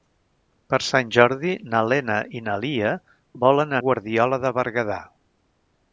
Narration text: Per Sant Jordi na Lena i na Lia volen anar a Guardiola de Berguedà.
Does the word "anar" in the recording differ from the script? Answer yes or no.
yes